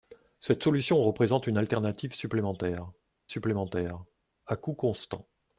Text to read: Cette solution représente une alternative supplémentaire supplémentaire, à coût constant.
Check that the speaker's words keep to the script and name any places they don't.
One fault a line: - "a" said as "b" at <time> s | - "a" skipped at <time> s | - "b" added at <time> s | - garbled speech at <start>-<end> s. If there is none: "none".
none